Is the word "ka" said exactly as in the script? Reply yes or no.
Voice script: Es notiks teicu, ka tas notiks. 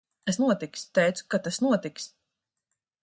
yes